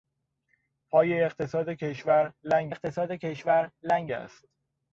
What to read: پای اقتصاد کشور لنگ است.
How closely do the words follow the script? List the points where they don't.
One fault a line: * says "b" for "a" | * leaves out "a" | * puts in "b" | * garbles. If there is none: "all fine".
* puts in "اقتصاد کشور لنگ"